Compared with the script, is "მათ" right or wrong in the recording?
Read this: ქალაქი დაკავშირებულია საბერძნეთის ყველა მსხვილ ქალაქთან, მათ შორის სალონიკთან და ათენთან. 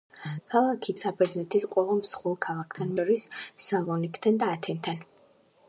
wrong